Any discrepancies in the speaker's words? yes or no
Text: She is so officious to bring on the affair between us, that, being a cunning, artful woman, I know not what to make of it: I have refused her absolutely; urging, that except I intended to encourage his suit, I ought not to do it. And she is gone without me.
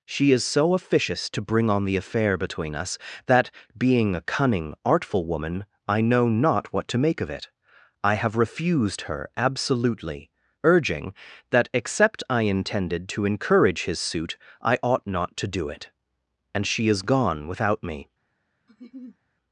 no